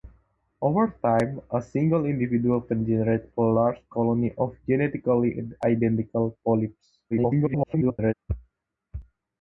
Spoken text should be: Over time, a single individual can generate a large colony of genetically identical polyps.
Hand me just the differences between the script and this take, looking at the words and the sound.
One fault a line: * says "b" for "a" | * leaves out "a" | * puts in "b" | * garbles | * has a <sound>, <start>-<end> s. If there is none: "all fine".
* garbles